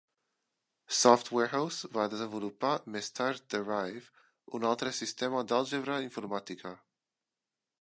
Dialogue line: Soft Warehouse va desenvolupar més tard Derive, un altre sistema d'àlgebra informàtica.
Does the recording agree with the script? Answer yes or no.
yes